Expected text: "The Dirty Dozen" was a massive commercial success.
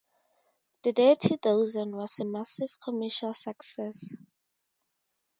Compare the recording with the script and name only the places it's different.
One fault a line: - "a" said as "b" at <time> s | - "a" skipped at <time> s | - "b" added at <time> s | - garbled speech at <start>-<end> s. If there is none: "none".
none